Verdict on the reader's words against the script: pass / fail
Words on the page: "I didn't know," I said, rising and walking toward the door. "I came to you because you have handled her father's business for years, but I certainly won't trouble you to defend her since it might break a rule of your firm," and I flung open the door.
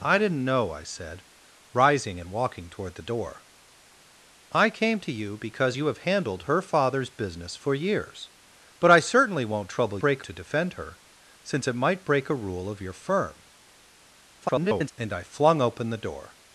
fail